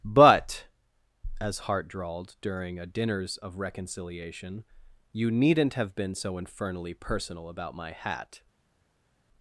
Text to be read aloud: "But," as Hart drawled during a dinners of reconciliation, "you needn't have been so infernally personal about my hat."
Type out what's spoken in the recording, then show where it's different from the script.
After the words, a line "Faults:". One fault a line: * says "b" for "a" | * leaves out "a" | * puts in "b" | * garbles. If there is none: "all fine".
"But," as Hart drawled during a dinners of reconciliation, "you needn't have been so infernally personal about my hat."
Faults:
all fine